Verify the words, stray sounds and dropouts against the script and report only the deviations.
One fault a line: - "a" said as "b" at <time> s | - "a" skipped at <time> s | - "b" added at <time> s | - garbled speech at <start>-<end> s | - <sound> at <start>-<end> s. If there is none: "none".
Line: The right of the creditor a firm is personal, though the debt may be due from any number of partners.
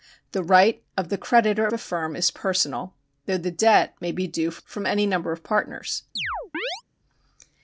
- chirp at 6.2-6.8 s